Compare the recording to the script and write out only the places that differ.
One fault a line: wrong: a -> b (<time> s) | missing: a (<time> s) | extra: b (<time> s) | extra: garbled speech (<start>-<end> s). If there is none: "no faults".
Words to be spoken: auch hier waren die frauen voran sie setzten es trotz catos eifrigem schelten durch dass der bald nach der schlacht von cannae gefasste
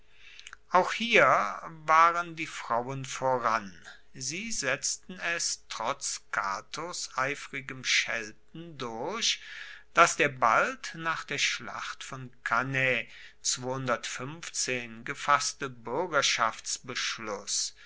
no faults